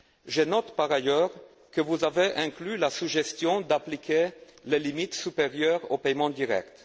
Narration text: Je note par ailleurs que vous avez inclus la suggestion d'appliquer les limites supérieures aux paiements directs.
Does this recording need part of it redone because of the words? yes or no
no